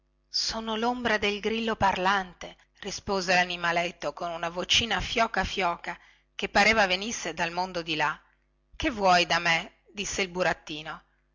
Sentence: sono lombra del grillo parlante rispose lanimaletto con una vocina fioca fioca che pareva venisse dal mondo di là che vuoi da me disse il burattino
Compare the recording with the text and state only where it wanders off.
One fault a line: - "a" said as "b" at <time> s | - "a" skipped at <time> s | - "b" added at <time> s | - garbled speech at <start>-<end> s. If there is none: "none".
none